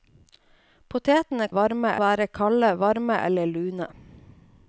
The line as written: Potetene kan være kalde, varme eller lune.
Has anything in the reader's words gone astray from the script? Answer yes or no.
yes